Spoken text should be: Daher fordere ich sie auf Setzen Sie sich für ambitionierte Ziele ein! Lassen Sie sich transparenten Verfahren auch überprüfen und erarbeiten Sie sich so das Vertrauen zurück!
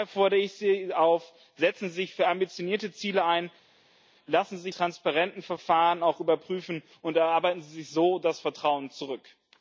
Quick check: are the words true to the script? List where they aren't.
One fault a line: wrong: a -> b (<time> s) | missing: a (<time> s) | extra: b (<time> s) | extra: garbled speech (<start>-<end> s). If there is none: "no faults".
no faults